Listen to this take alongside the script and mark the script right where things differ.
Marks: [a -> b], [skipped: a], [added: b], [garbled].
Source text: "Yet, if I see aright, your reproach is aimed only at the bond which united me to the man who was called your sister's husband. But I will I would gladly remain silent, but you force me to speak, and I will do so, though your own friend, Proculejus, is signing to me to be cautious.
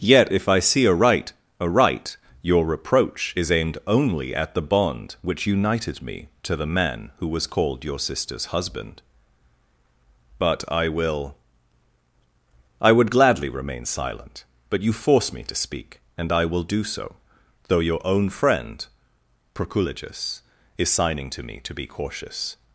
"Yet, if I see aright, [added: aright] your reproach is aimed only at the bond which united me to the man who was called your sister's husband. But I will I would gladly remain silent, but you force me to speak, and I will do so, though your own friend, Proculejus, is signing to me to be cautious.